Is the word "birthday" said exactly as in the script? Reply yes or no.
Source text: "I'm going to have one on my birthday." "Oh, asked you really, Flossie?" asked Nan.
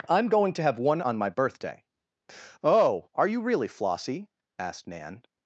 yes